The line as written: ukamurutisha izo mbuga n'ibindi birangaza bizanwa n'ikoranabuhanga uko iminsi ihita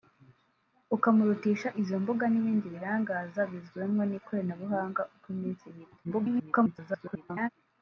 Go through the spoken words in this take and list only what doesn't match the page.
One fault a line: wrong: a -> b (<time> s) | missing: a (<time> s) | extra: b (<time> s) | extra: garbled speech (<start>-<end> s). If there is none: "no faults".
extra: garbled speech (6.0-7.5 s)